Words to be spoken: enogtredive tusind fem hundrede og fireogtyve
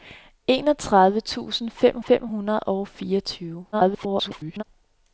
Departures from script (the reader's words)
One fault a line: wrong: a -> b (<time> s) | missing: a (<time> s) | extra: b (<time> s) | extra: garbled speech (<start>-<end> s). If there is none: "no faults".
extra: fem (2.0 s)
extra: garbled speech (3.7-4.6 s)